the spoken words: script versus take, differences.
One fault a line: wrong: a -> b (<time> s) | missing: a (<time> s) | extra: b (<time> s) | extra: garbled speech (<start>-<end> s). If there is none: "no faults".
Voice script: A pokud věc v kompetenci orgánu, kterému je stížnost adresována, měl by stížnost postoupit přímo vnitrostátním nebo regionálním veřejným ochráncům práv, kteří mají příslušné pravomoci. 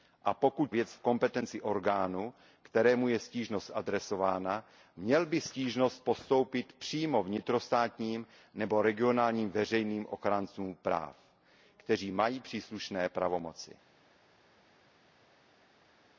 no faults